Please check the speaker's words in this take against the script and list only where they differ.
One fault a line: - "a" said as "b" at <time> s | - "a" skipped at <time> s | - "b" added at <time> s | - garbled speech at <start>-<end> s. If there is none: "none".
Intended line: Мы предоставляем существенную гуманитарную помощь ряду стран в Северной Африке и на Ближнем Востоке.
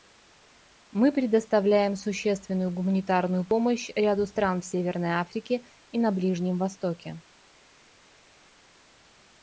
none